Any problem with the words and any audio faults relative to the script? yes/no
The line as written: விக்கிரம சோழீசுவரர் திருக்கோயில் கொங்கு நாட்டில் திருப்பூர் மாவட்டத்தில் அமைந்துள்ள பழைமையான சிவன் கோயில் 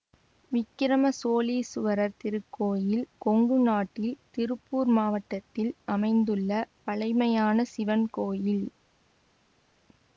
no